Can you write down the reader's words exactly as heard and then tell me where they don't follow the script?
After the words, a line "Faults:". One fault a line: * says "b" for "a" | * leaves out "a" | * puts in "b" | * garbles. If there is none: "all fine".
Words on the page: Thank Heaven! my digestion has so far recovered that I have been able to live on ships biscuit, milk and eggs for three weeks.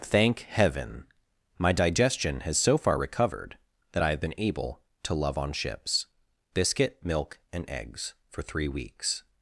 Thank Heaven! my digestion has so far recovered that I have been able to love on ships biscuit, milk and eggs for three weeks.
Faults:
* says "love" for "live"